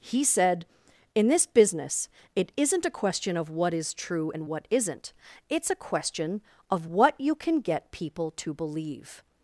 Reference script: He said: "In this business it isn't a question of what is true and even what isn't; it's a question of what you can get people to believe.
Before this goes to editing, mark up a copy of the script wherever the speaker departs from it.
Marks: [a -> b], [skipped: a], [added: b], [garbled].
He said: "In this business it isn't a question of what is true and [skipped: even] what isn't; it's a question of what you can get people to believe.